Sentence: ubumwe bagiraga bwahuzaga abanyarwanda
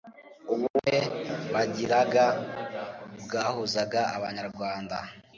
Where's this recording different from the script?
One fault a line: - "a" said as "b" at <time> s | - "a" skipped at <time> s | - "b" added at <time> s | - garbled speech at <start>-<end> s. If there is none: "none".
none